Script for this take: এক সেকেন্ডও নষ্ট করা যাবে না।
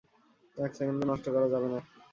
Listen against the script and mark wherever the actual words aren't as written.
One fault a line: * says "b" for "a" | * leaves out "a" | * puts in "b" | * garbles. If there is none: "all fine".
all fine